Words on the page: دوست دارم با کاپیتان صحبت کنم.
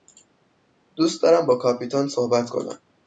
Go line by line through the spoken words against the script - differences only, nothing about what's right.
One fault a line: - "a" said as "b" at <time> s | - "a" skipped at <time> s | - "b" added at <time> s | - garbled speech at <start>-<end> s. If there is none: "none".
none